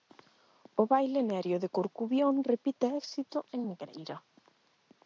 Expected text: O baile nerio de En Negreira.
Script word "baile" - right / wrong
right